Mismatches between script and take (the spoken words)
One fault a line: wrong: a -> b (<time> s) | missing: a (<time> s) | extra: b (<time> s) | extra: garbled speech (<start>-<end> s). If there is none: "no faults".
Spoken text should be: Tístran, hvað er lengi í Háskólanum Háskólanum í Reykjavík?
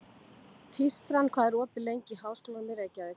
extra: opið (1.6 s)
missing: Háskólanum (2.7 s)